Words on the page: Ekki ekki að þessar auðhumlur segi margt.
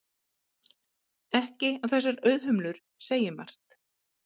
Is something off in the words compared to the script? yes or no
yes